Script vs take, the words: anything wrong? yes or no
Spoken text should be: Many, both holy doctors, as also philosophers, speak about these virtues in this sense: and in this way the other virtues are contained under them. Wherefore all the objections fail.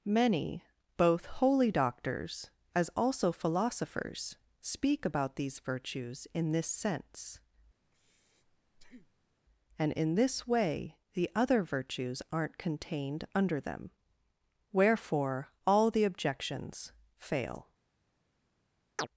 yes